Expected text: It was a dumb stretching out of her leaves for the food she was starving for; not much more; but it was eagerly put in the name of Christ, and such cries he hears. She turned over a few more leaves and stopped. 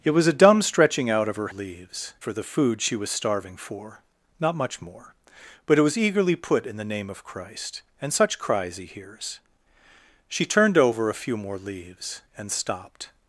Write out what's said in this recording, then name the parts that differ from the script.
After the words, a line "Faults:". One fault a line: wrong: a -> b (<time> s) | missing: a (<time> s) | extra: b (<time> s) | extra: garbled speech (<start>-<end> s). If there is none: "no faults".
It was a dumb stretching out of her leaves for the food she was starving for; not much more; but it was eagerly put in the name of Christ, and such cries he hears. She turned over a few more leaves and stopped.
Faults:
no faults